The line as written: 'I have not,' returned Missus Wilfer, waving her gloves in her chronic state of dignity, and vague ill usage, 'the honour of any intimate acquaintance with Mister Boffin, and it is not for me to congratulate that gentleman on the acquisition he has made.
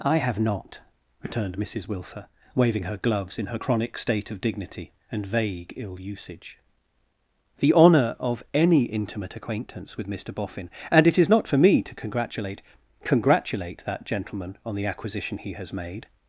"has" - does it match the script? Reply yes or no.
yes